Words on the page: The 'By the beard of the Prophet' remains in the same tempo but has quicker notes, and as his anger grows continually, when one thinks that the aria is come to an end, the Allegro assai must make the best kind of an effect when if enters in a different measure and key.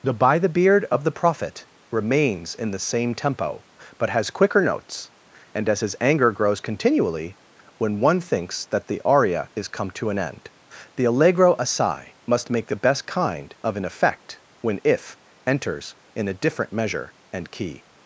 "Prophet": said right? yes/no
yes